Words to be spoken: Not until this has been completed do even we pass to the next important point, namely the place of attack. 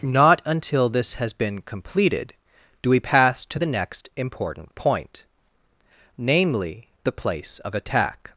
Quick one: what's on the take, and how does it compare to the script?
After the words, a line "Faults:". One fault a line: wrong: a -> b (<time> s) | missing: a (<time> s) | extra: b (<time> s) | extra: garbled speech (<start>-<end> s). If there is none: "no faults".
Not until this has been completed do we pass to the next important point, namely the place of attack.
Faults:
missing: even (2.9 s)